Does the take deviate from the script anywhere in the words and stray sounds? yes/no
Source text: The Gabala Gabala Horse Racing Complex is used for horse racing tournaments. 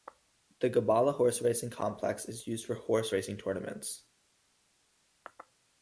yes